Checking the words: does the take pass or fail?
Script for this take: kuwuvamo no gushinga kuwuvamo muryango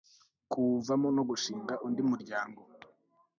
fail